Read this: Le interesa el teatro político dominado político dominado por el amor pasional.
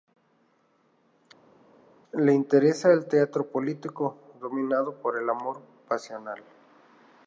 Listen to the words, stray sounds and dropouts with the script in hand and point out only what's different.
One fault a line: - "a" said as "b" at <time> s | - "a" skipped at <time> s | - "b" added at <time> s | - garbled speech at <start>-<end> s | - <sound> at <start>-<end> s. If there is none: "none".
- "político dominado" skipped at 4.9 s